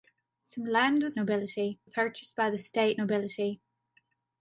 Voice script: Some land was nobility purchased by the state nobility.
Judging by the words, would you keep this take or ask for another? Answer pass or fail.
pass